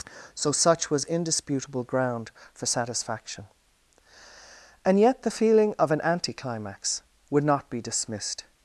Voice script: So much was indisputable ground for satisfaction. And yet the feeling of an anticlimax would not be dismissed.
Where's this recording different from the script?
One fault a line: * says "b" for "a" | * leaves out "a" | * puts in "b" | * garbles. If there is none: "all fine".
* says "such" for "much"